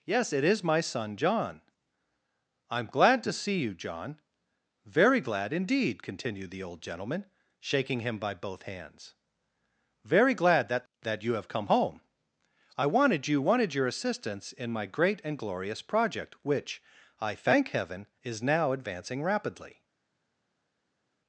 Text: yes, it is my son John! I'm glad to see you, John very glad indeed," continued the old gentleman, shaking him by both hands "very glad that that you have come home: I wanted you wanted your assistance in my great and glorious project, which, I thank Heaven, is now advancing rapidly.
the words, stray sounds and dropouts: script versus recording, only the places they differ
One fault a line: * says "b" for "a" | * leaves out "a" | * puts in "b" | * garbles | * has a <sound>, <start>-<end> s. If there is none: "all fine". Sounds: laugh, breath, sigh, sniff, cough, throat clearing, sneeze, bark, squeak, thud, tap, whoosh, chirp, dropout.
all fine